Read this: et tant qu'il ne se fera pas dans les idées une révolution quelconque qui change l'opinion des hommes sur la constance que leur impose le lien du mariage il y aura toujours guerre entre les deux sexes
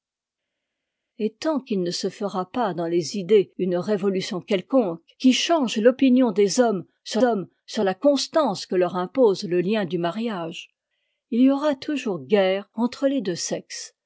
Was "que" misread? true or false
false